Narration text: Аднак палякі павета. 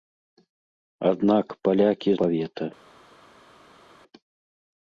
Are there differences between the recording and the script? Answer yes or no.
no